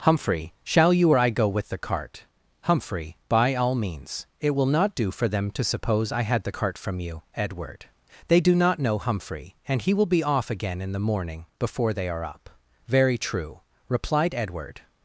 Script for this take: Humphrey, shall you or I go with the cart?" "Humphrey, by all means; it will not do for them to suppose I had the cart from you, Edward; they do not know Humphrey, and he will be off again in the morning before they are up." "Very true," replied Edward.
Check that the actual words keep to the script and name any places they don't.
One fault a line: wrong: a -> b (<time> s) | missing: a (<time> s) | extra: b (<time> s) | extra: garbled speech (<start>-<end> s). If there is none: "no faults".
no faults